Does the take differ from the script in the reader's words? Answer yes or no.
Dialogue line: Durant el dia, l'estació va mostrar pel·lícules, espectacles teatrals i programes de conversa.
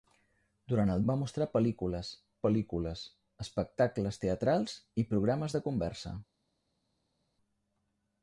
yes